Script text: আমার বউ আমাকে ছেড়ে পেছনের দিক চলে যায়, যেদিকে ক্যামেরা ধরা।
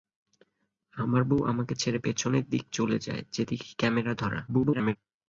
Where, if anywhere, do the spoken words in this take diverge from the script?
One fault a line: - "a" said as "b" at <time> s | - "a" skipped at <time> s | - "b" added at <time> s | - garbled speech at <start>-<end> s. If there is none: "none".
- garbled speech at 4.5-5.0 s